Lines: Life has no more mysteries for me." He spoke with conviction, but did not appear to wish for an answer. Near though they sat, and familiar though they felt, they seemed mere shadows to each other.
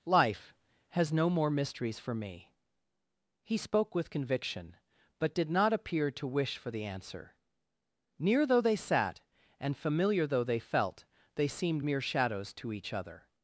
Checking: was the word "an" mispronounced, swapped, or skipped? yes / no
yes